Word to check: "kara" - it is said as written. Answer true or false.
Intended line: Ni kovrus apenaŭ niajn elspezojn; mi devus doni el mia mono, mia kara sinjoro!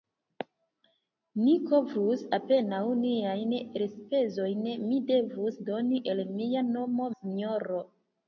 false